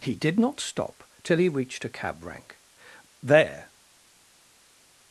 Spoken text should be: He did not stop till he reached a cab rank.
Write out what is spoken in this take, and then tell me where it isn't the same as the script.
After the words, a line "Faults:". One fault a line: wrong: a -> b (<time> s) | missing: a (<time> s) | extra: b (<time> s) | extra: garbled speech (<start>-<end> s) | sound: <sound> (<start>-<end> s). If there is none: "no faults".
He did not stop till he reached a cab rank. There
Faults:
extra: There (3.2 s)